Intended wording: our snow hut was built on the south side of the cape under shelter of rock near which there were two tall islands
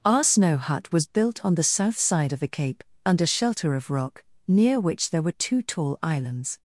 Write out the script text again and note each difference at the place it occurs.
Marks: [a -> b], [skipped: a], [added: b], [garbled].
our snow hut was built on the south side of the cape under shelter of rock near which there were two tall islands